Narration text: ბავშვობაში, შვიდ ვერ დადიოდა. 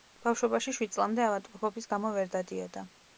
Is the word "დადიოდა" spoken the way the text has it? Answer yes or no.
yes